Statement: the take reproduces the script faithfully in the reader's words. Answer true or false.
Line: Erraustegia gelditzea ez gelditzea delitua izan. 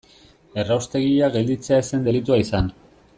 false